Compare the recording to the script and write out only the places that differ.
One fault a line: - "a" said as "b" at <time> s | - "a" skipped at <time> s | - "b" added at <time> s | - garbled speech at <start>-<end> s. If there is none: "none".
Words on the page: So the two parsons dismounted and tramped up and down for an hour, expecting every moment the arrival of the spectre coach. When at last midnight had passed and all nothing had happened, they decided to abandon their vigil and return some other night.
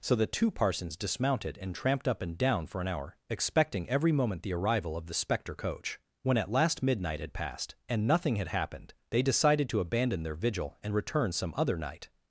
- "all" skipped at 8.1 s